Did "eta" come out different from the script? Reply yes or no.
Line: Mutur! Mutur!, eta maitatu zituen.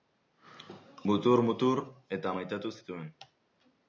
no